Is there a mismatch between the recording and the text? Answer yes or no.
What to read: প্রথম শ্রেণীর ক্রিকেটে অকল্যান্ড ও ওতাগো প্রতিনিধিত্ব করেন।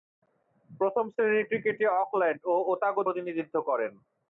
no